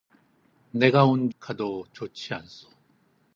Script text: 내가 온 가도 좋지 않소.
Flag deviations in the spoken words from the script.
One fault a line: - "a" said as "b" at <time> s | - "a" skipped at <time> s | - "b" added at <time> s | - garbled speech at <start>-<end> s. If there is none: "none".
none